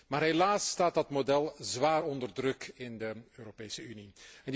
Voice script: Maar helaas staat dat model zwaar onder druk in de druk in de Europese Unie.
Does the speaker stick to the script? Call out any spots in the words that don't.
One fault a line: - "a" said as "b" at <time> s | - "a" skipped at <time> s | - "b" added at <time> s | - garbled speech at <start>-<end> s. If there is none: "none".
- "druk in de" skipped at 3.1 s